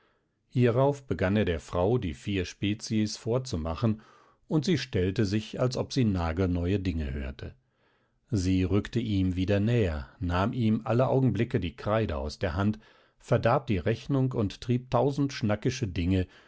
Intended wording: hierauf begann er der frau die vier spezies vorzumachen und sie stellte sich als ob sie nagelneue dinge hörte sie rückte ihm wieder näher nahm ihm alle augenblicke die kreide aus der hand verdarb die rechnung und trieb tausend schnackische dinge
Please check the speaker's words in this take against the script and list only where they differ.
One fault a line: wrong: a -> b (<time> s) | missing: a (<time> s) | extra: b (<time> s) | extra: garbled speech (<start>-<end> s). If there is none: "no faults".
no faults